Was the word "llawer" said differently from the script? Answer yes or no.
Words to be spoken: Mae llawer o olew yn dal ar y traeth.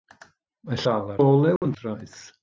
yes